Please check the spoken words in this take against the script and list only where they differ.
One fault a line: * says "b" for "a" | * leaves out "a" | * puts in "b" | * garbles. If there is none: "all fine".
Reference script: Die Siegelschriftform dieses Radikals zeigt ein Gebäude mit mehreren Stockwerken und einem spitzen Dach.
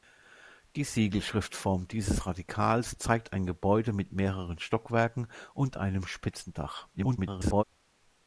* garbles